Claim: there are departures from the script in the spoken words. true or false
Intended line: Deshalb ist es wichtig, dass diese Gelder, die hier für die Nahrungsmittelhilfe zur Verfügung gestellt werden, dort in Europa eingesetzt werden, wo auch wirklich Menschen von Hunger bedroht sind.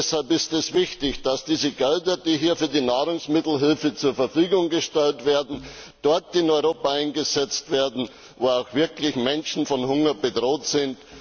false